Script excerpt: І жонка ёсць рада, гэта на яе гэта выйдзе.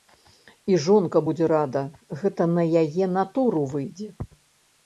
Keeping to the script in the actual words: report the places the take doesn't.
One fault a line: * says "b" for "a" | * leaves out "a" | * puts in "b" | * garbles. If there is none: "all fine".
* says "будзе" for "ёсць"
* says "натуру" for "гэта"